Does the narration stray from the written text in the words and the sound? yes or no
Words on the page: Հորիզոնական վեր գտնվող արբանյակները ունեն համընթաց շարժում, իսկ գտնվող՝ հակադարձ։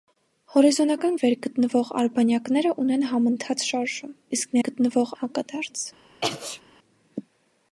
yes